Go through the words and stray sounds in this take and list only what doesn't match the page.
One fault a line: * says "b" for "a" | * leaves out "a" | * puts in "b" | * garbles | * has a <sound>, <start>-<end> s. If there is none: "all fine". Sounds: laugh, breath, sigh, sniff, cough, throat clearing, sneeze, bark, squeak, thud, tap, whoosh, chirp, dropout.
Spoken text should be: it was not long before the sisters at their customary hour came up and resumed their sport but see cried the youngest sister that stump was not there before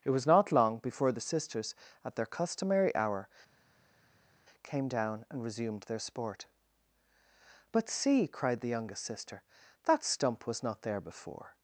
* says "down" for "up"